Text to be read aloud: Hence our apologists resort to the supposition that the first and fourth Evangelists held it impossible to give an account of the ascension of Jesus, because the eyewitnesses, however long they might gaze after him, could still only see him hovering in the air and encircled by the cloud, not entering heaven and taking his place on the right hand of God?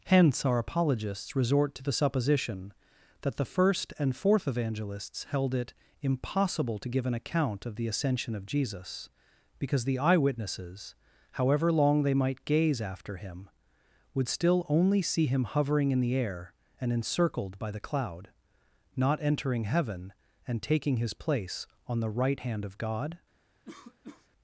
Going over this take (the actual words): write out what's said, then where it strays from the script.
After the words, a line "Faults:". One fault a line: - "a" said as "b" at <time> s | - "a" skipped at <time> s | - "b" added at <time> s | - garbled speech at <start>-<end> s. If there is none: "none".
Hence our apologists resort to the supposition that the first and fourth Evangelists held it impossible to give an account of the ascension of Jesus, because the eyewitnesses, however long they might gaze after him, would still only see him hovering in the air and encircled by the cloud, not entering heaven and taking his place on the right hand of God?
Faults:
- "could" said as "would" at 14.1 s